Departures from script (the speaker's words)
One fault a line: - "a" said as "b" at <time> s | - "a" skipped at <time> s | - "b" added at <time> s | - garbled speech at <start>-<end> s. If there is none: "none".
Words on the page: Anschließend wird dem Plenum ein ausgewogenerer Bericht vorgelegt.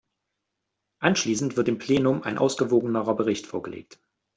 none